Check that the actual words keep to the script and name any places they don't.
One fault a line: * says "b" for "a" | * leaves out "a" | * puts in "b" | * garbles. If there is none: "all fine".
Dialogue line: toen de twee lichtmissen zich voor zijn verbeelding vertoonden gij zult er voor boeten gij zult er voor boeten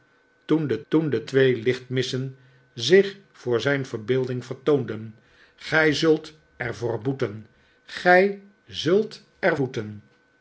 * puts in "toen de"
* leaves out "voor"